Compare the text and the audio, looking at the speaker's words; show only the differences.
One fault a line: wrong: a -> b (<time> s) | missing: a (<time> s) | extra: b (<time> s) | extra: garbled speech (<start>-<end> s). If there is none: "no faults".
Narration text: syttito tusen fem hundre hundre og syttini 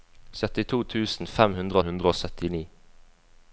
no faults